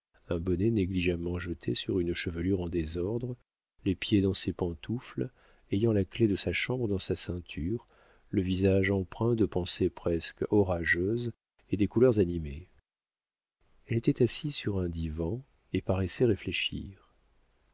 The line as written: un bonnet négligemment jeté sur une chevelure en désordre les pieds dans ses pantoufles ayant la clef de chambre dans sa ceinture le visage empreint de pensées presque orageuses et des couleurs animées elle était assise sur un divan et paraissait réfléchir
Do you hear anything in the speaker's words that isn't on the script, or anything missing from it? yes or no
yes